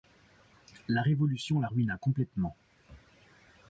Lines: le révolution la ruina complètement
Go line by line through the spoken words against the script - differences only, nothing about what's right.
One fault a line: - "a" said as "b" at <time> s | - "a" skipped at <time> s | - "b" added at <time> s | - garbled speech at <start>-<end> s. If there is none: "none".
- "le" said as "la" at 0.9 s